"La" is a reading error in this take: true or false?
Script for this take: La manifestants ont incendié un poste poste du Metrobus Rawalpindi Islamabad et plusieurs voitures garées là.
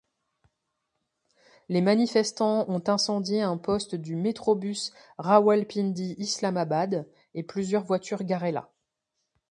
true